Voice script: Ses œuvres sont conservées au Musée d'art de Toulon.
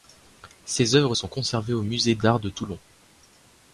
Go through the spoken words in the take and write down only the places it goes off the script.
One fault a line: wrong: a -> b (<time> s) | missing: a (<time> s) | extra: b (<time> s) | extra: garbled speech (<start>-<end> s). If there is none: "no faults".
no faults